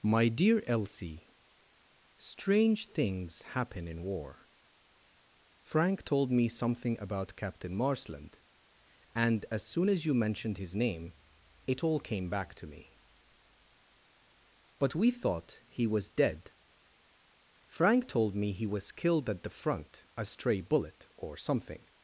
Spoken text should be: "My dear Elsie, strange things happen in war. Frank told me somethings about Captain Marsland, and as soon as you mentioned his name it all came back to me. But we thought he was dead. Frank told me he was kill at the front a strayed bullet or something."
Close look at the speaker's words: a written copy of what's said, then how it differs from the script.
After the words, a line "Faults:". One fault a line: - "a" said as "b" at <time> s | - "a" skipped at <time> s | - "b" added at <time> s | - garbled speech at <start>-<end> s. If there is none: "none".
"My dear Elsie, strange things happen in war. Frank told me something about Captain Marsland, and as soon as you mentioned his name it all came back to me. But we thought he was dead. Frank told me he was killed at the front a stray bullet or something."
Faults:
- "somethings" said as "something" at 6.5 s
- "kill" said as "killed" at 18.9 s
- "strayed" said as "stray" at 20.2 s